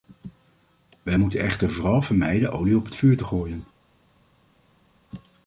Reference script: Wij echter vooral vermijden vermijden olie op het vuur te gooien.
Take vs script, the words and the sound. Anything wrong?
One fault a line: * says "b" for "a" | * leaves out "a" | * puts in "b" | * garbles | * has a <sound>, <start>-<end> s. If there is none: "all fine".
* puts in "moeten"
* leaves out "vermijden"